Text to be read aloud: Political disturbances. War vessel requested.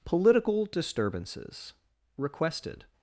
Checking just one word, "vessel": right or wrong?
wrong